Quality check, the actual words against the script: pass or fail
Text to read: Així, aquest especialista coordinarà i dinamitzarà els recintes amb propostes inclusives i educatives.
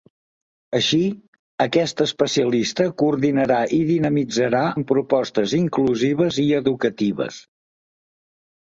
fail